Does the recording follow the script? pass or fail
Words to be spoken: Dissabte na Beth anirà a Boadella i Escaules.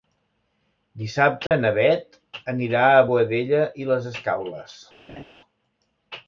fail